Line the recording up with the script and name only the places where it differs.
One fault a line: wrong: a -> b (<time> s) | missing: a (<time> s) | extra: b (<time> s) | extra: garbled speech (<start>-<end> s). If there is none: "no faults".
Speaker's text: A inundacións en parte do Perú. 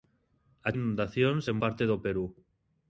no faults